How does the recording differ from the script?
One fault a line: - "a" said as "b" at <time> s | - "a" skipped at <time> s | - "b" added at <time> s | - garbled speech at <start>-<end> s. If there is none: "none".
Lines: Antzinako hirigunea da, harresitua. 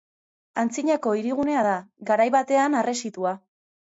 - "garai batean" added at 2.1 s